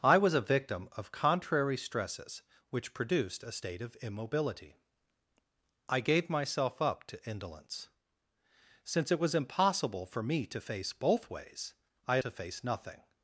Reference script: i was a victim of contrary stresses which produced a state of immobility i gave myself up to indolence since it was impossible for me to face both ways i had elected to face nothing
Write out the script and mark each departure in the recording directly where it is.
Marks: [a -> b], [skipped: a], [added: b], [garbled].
i was a victim of contrary stresses which produced a state of immobility i gave myself up to indolence since it was impossible for me to face both ways i had [skipped: elected] to face nothing